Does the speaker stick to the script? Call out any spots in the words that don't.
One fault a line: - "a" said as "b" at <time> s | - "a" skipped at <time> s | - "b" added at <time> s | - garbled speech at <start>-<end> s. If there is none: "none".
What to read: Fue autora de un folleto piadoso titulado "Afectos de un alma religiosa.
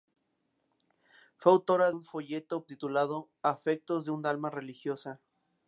- "de" skipped at 1.9 s
- "piadoso" skipped at 2.6 s